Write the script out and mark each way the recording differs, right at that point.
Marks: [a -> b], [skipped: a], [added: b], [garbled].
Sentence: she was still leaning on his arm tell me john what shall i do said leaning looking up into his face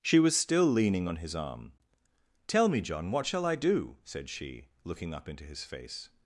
she was still leaning on his arm tell me john what shall i do said [leaning -> she] looking up into his face